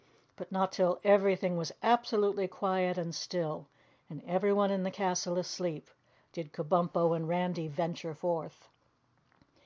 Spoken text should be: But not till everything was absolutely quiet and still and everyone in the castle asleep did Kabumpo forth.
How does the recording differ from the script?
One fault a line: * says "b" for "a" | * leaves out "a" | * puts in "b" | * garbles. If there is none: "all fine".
* puts in "and Randy venture"